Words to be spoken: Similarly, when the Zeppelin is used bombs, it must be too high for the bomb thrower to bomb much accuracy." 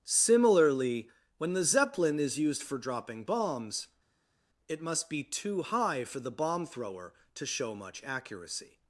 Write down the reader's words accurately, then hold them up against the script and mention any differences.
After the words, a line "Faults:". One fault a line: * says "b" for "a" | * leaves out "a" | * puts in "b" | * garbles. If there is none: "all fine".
Similarly, when the Zeppelin is used for dropping bombs, it must be too high for the bomb thrower to show much accuracy."
Faults:
* puts in "for dropping"
* says "show" for "bomb"